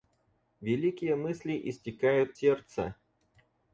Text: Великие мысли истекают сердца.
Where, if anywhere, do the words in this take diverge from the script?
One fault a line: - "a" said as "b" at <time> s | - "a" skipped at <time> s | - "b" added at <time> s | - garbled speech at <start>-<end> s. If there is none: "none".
none